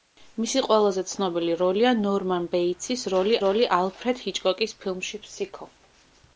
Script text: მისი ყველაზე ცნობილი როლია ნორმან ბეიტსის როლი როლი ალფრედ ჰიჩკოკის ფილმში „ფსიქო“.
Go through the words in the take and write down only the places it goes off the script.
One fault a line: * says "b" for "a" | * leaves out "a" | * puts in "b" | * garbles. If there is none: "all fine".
all fine